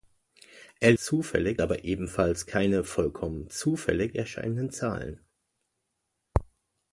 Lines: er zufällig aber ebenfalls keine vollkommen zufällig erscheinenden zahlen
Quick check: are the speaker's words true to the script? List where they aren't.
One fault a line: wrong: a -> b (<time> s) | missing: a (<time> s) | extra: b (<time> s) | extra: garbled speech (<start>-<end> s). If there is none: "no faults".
no faults